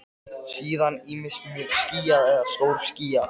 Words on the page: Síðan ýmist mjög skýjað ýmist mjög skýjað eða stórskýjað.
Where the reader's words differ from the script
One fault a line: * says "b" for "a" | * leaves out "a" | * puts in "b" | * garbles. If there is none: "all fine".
* leaves out "ýmist mjög skýjað"